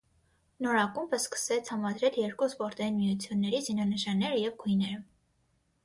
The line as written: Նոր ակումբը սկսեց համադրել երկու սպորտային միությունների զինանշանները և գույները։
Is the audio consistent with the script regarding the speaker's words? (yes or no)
yes